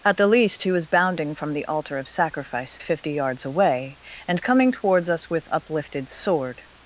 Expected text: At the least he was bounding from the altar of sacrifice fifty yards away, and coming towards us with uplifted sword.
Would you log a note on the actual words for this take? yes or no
no